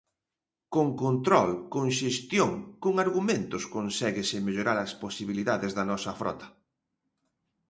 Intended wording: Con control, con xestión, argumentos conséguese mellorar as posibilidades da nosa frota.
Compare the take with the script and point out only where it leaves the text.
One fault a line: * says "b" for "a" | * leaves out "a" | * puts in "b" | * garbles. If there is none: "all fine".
* puts in "con"